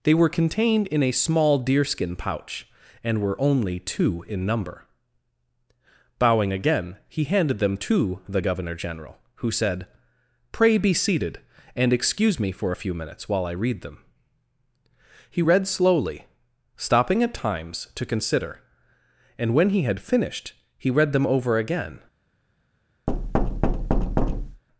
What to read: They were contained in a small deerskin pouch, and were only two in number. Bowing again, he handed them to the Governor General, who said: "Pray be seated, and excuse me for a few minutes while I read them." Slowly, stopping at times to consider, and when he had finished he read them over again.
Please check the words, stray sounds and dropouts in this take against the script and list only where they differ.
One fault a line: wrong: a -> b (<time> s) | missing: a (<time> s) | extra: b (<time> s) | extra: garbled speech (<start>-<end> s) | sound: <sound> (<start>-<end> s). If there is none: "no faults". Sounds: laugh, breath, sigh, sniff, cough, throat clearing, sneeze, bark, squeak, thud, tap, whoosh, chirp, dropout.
extra: He read (15.3 s)
sound: thud (23.1-24.6 s)